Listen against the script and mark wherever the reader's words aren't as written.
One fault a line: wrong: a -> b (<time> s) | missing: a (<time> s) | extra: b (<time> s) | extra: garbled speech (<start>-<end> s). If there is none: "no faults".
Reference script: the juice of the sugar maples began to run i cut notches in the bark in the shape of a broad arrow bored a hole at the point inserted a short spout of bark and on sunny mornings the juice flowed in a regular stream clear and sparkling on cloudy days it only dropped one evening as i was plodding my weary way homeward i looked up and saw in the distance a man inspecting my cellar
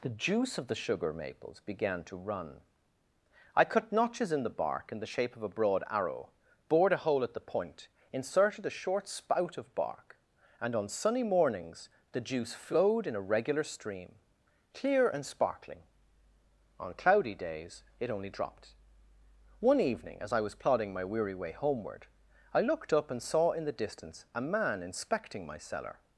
no faults